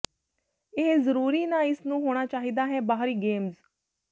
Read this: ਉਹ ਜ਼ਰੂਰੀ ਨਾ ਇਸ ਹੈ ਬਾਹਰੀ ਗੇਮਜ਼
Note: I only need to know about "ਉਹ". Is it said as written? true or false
false